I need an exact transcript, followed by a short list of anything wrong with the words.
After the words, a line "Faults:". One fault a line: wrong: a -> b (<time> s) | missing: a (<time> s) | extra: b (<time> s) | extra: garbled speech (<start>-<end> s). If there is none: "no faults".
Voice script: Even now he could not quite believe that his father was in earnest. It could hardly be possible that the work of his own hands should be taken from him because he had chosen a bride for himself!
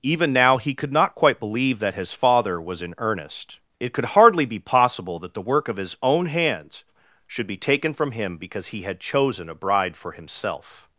Even now he could not quite believe that his father was in earnest. It could hardly be possible that the work of his own hands should be taken from him because he had chosen a bride for himself!
Faults:
no faults